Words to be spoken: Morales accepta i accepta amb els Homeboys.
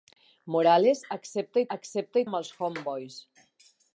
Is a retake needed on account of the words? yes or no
no